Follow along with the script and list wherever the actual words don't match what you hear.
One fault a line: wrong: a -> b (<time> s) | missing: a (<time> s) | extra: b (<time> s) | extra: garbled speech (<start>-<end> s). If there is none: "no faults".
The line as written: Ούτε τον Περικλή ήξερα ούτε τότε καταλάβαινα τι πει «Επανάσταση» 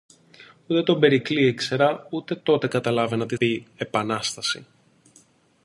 no faults